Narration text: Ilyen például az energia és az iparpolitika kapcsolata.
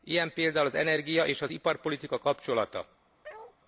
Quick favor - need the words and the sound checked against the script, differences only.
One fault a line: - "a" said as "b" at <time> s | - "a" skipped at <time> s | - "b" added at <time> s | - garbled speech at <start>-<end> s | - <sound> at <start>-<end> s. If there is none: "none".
- bark at 3.2-3.6 s